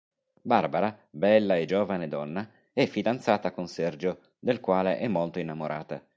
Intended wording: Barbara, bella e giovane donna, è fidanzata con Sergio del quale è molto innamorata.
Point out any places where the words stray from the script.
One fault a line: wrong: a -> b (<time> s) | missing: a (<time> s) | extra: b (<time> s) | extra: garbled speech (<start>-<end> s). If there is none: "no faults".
no faults